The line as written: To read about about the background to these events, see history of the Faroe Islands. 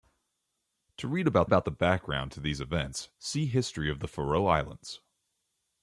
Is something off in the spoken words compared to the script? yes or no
no